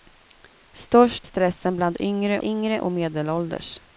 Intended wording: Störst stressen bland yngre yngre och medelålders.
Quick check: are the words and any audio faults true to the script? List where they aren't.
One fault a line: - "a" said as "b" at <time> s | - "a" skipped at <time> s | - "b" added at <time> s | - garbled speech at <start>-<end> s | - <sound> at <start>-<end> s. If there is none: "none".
none